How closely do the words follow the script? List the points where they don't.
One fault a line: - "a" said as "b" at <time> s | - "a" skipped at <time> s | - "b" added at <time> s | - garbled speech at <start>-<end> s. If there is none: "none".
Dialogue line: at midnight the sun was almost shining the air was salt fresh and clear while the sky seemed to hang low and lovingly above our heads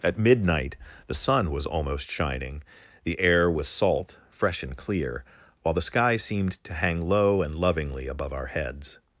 none